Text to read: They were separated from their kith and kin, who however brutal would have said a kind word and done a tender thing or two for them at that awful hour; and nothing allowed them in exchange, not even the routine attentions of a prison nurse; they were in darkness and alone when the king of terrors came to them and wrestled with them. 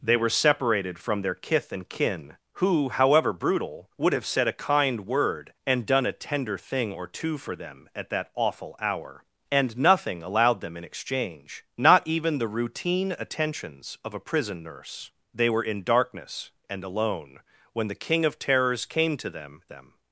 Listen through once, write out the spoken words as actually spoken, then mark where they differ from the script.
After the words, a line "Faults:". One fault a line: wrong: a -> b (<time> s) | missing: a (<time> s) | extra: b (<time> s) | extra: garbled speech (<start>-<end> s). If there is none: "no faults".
They were separated from their kith and kin, who however brutal would have said a kind word and done a tender thing or two for them at that awful hour; and nothing allowed them in exchange, not even the routine attentions of a prison nurse; they were in darkness and alone when the king of terrors came to them them.
Faults:
missing: and wrestled with (19.6 s)